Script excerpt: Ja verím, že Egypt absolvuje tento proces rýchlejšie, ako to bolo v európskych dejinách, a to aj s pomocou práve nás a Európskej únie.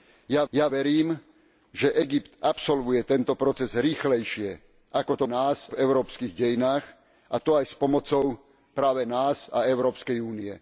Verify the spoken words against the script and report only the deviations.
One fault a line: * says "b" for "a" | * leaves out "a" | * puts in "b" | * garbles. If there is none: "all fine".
* puts in "ja"
* says "nás" for "bolo"